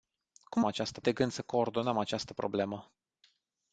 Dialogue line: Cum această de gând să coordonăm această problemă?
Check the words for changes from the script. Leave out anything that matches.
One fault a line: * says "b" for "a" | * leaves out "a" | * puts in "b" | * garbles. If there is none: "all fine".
all fine